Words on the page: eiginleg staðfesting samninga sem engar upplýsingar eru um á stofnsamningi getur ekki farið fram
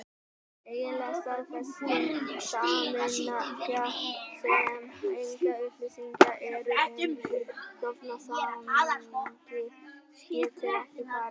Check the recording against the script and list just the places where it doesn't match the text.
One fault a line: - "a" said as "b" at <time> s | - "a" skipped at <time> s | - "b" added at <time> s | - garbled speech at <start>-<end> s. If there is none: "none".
- "á" said as "í" at 7.2 s